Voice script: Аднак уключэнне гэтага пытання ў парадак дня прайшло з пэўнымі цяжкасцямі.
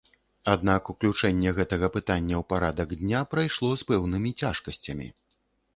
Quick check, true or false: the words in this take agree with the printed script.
true